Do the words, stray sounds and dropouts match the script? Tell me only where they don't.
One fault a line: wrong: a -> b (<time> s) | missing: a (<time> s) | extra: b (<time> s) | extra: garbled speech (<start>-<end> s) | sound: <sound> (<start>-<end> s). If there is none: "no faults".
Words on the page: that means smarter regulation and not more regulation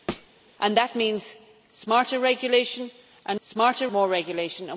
sound: thud (0.1-0.3 s)
wrong: not -> smarter (3.4 s)